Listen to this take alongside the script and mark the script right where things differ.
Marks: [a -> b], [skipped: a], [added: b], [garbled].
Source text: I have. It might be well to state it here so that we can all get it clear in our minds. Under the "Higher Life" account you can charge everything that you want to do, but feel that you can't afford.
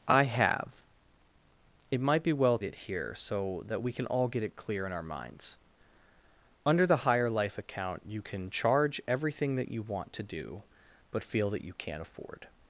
I have. It might be well [skipped: to state] it here so that we can all get it clear in our minds. Under the "Higher Life" account you can charge everything that you want to do, but feel that you can't afford.